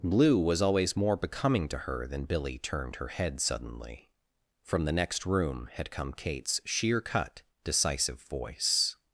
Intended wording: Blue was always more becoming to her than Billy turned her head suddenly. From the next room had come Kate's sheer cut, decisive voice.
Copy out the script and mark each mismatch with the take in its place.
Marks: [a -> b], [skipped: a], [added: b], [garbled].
Blue was always more becoming to her than Billy turned her head suddenly. From the next room had come Kate's sheer cut, decisive voice.